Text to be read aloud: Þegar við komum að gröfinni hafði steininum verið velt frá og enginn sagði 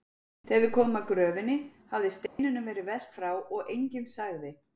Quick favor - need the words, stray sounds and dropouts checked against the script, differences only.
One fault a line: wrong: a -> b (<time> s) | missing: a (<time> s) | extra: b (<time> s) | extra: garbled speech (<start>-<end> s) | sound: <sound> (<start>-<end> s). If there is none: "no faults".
sound: dropout (2.3-2.4 s)